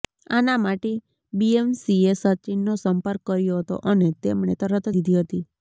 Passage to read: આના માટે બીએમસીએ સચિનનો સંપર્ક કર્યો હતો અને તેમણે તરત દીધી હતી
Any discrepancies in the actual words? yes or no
no